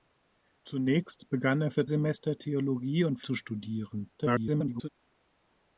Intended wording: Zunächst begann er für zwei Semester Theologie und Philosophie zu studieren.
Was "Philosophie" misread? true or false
true